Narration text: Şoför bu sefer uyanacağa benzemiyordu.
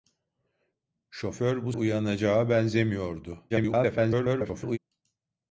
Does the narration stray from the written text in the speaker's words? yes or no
yes